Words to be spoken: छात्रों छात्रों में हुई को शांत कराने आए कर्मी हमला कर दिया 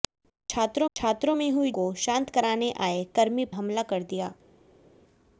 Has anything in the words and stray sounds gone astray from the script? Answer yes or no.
no